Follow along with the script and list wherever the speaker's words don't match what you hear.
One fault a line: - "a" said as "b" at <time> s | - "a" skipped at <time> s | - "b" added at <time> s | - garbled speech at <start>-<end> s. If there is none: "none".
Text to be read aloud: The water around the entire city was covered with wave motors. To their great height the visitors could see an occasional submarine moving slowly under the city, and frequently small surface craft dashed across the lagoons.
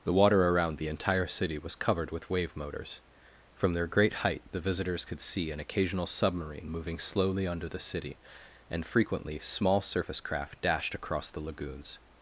- "To" said as "From" at 3.5 s